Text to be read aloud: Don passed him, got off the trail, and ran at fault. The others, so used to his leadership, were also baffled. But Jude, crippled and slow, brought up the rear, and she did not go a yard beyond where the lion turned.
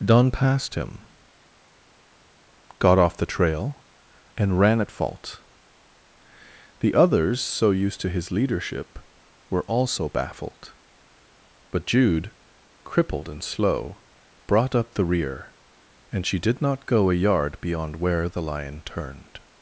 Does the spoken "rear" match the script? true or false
true